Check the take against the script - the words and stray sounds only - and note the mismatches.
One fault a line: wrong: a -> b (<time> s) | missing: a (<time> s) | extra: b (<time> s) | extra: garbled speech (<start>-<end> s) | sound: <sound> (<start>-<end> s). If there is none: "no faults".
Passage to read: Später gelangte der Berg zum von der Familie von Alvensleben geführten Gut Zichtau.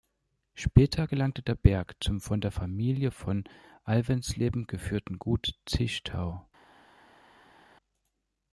no faults